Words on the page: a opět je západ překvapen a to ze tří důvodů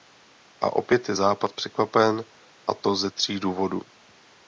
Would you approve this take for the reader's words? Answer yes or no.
yes